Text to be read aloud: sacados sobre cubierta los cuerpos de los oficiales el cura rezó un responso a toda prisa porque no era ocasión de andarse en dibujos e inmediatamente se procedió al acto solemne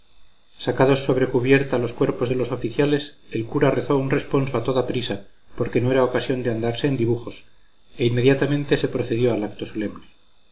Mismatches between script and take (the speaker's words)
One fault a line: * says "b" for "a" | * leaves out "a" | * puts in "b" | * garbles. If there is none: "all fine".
all fine